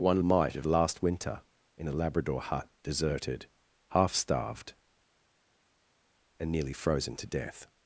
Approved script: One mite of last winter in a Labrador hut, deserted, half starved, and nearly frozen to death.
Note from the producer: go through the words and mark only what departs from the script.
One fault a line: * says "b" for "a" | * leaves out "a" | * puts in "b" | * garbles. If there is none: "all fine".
all fine